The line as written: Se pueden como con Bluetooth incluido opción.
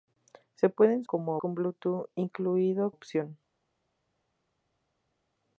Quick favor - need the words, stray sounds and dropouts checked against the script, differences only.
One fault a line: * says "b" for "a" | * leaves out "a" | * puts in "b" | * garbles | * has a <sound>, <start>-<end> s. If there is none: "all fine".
all fine